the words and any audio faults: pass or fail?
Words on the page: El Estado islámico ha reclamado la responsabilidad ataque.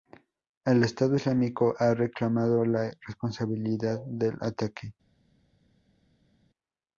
fail